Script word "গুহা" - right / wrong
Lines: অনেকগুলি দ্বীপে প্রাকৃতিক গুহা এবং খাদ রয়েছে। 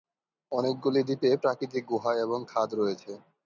right